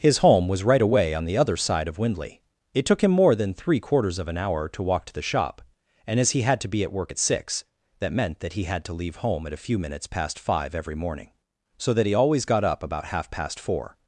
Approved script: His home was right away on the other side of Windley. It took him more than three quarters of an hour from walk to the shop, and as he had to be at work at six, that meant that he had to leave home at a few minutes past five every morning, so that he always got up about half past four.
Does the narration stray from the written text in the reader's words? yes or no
yes